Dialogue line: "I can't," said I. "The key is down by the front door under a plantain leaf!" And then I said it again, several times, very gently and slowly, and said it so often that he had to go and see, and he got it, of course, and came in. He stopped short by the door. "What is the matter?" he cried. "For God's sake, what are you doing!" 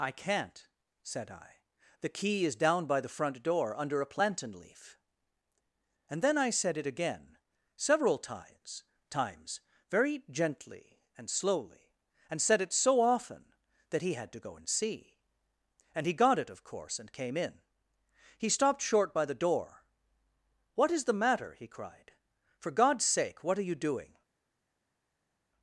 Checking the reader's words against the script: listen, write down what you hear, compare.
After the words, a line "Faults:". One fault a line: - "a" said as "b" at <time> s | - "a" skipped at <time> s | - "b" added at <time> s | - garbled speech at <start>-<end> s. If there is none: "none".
"I can't," said I. "The key is down by the front door under a plantain leaf!" And then I said it again, several times times, very gently and slowly, and said it so often that he had to go and see, and he got it, of course, and came in. He stopped short by the door. "What is the matter?" he cried. "For God's sake, what are you doing!"
Faults:
- "times" added at 9.1 s